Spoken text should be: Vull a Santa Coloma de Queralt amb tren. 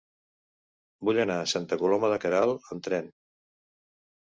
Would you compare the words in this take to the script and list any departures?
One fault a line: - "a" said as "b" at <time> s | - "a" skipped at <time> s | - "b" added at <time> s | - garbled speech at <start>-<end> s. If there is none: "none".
- "anar" added at 1.2 s